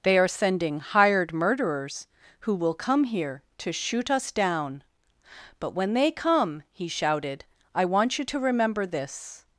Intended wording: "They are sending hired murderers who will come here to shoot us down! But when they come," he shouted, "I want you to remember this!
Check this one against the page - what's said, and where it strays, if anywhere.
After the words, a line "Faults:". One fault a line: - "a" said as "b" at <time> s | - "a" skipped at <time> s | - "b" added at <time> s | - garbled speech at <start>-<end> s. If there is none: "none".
"They are sending hired murderers who will come here to shoot us down! But when they come," he shouted, "I want you to remember this!
Faults:
none